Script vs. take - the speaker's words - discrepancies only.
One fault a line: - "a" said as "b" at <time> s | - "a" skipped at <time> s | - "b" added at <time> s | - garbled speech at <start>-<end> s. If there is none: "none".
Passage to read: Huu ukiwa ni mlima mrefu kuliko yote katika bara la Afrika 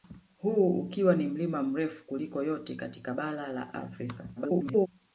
- garbled speech at 4.4-4.9 s